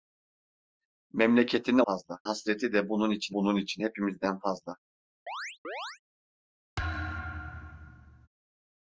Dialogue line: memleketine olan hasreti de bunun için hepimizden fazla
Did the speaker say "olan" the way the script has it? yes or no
no